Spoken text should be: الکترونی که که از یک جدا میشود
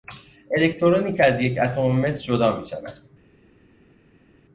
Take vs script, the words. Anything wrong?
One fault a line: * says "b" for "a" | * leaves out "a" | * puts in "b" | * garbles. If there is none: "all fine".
* leaves out "که"
* puts in "اتم مس"